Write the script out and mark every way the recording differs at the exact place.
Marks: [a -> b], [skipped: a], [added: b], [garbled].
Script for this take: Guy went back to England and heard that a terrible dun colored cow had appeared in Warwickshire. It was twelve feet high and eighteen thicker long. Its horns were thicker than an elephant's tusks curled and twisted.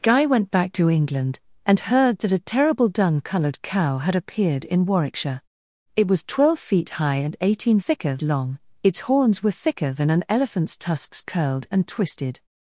Guy went back to England and heard that a terrible dun colored cow had appeared in Warwickshire. It was twelve feet high and eighteen thicker long. Its horns were thicker than an elephant's tusks curled and twisted.